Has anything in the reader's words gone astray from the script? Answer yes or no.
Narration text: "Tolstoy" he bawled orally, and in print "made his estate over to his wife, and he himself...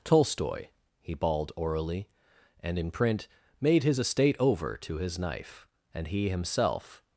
yes